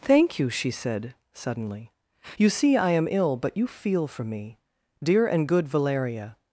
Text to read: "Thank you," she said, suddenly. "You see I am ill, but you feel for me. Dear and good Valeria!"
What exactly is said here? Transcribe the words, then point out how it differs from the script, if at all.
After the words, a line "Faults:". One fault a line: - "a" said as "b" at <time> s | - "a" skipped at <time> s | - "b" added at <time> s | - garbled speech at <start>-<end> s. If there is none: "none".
"Thank you," she said, suddenly. "You see I am ill, but you feel for me. Dear and good Valeria!"
Faults:
none